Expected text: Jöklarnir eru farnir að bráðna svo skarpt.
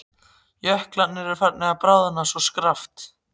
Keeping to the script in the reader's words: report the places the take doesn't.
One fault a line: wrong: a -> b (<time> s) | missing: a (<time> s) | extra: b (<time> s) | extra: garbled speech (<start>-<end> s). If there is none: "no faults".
no faults